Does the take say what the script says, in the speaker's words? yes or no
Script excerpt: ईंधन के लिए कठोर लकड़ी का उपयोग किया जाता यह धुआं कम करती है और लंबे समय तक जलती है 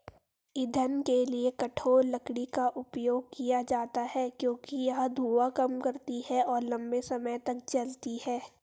no